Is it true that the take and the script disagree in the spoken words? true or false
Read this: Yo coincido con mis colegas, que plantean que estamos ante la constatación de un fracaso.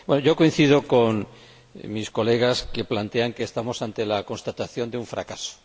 false